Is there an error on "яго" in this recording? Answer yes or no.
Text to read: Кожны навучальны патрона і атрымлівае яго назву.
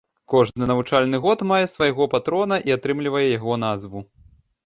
no